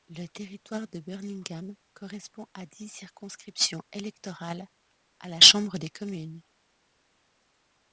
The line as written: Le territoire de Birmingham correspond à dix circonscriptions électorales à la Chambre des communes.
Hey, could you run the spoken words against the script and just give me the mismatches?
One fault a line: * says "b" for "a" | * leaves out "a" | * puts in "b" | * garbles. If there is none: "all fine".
all fine